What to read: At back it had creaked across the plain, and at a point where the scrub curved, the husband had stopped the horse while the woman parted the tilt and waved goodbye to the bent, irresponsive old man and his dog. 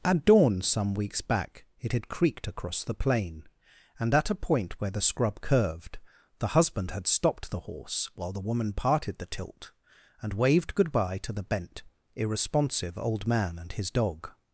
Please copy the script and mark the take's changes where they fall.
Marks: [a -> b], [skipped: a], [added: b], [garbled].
At [added: dawn some weeks] back it had creaked across the plain, and at a point where the scrub curved, the husband had stopped the horse while the woman parted the tilt and waved goodbye to the bent, irresponsive old man and his dog.